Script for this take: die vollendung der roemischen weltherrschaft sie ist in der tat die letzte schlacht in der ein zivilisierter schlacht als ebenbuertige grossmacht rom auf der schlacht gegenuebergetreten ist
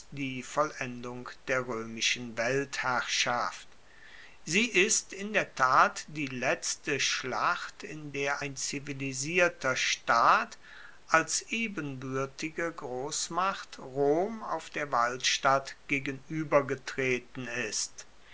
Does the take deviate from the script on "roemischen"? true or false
false